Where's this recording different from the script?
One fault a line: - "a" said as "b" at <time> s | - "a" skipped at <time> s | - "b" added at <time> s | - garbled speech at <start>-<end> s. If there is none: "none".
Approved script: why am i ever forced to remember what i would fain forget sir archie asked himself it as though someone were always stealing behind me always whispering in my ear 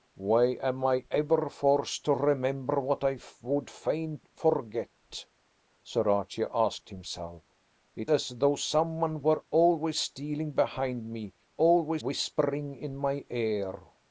none